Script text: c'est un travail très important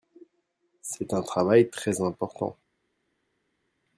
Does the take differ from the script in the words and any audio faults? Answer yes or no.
no